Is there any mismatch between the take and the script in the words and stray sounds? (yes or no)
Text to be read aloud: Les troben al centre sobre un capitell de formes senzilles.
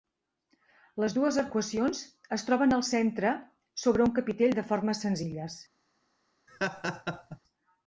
yes